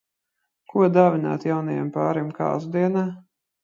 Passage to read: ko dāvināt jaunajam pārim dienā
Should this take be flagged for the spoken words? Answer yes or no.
yes